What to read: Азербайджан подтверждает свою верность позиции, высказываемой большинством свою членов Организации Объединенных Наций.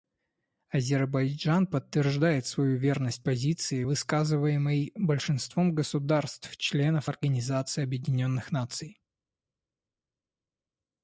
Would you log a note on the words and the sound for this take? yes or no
yes